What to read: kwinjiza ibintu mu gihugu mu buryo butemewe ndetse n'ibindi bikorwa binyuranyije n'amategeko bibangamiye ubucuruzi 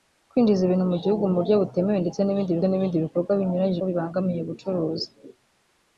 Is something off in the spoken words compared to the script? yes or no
yes